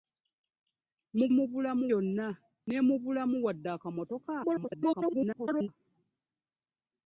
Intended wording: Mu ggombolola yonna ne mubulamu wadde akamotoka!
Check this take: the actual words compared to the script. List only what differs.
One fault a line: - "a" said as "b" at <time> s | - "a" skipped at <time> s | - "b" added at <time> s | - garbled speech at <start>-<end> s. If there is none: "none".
- "ggombolola" said as "mubulamu" at 1.4 s
- garbled speech at 4.4-5.7 s